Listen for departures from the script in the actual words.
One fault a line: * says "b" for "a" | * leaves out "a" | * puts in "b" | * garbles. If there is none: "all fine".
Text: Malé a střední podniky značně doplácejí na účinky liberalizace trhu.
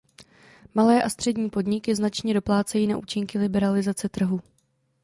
all fine